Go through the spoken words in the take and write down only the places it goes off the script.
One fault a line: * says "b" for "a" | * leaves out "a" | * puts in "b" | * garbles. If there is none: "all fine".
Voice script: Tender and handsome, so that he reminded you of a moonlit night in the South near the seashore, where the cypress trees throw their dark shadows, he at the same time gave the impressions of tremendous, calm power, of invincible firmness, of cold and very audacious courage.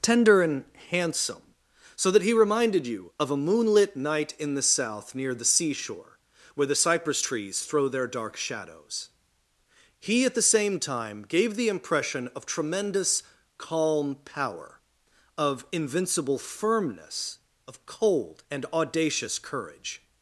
* says "impression" for "impressions"
* leaves out "very"